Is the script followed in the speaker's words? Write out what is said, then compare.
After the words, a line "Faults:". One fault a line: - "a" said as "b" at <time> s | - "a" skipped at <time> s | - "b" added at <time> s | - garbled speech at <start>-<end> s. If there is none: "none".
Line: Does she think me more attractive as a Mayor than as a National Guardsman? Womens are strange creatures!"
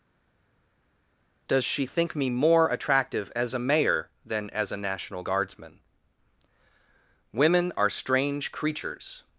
Does she think me more attractive as a Mayor than as a National Guardsman? Women are strange creatures!"
Faults:
- "Womens" said as "Women" at 7.3 s